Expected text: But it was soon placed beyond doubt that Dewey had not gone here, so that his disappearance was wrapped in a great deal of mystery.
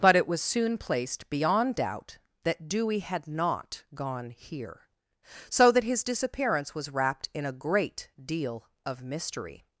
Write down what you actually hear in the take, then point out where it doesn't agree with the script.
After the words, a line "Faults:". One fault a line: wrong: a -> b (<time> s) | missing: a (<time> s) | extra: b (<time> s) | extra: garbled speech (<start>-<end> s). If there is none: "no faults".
But it was soon placed beyond doubt that Dewey had not gone here, so that his disappearance was wrapped in a great deal of mystery.
Faults:
no faults